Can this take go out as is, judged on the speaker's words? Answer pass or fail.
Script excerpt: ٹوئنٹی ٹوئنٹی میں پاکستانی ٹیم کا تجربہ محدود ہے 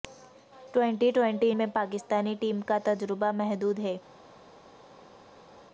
pass